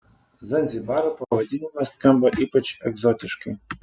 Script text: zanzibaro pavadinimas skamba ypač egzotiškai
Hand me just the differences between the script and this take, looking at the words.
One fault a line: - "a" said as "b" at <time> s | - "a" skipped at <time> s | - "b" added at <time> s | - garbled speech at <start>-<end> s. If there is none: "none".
none